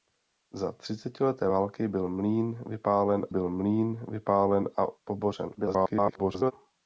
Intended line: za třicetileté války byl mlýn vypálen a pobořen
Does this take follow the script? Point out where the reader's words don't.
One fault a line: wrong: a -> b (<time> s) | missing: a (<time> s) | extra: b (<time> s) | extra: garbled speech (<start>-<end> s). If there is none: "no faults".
extra: byl mlýn vypálen (3.3 s)
extra: garbled speech (5.6-6.5 s)